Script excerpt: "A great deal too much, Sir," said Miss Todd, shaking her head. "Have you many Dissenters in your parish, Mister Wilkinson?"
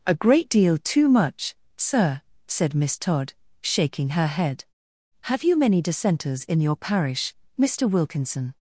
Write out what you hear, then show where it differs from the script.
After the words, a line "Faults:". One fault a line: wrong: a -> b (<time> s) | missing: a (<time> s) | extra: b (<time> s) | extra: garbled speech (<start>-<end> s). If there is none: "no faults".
"A great deal too much, Sir," said Miss Todd, shaking her head. "Have you many Dissenters in your parish, Mister Wilkinson?"
Faults:
no faults